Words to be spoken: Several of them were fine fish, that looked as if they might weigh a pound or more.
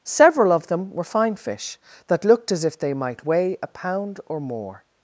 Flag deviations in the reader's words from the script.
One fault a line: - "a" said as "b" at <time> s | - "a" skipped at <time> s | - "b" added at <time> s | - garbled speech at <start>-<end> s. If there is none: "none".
none